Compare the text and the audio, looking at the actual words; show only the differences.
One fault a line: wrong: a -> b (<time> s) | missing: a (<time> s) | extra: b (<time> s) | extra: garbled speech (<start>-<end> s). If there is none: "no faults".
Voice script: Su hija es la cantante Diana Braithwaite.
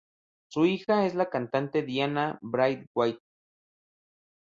no faults